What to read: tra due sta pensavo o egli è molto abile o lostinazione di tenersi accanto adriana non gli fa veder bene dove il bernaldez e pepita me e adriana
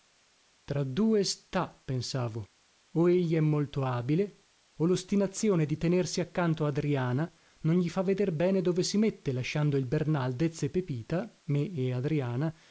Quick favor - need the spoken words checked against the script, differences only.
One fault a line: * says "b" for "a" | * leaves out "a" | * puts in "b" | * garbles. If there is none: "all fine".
* puts in "si mette lasciando"